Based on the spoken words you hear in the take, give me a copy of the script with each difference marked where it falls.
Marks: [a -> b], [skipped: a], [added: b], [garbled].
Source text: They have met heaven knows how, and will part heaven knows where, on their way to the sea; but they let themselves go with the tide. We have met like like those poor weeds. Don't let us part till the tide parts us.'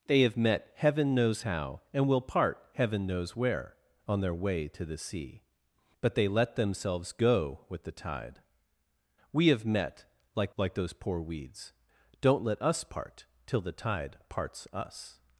They have met heaven knows how, and will part heaven knows where, on their way to the sea; but they let themselves go with the tide. We have met like like those poor weeds. Don't let us part till the tide parts us.'